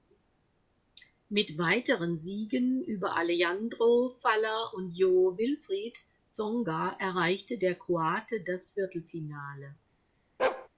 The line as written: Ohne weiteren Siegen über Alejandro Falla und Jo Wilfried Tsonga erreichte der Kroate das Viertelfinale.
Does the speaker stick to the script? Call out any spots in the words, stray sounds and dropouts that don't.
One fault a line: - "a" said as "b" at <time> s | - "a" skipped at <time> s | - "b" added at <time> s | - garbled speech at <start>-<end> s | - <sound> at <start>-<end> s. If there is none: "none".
- "Ohne" said as "Mit" at 1.3 s
- bark at 10.4-10.7 s